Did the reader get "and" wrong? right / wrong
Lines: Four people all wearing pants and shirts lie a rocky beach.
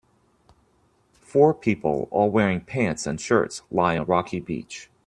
right